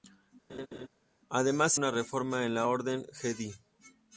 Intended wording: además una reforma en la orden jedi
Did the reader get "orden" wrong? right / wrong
right